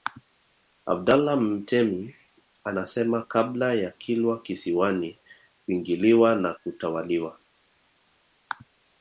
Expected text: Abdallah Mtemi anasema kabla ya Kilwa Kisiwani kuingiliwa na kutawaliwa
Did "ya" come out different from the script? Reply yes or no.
no